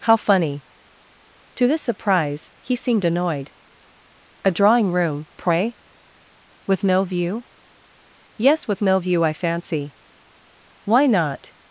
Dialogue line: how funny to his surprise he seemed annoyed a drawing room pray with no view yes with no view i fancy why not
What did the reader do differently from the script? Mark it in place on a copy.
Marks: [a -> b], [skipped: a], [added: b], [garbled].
how funny to his surprise he seemed annoyed a drawing room pray with no view yes with no view i fancy why not